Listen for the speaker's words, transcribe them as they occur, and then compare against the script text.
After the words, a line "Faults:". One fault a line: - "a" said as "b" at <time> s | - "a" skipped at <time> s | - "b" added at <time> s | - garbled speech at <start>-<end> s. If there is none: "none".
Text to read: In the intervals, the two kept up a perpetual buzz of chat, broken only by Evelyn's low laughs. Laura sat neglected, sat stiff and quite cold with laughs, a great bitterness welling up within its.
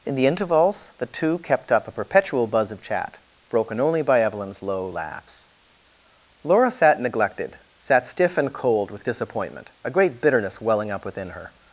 In the intervals, the two kept up a perpetual buzz of chat, broken only by Evelyn's low laughs. Laura sat neglected, sat stiff and cold with disappointment, a great bitterness welling up within her.
Faults:
- "quite" skipped at 8.5 s
- "laughs" said as "disappointment" at 9.0 s
- "its" said as "her" at 11.3 s